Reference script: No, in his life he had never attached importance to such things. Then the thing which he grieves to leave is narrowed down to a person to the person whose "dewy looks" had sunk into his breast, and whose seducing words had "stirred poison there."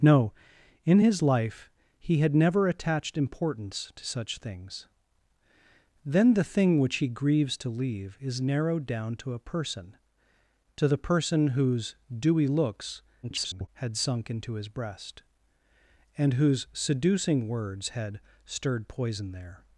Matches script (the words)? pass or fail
fail